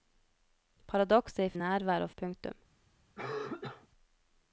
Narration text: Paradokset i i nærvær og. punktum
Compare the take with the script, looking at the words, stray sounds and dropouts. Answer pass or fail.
fail